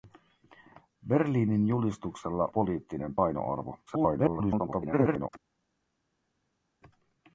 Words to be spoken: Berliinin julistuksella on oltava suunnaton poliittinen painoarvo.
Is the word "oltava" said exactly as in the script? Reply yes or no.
no